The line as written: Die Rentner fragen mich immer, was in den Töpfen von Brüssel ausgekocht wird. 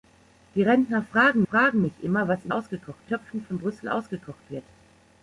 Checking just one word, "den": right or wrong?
wrong